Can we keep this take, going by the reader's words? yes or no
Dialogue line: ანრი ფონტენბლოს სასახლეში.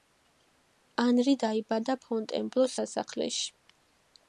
no